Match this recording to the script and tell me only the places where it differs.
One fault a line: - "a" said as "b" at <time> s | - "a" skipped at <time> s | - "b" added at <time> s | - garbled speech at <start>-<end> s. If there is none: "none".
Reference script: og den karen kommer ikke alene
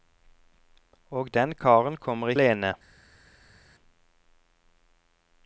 - "ikke" skipped at 2.3 s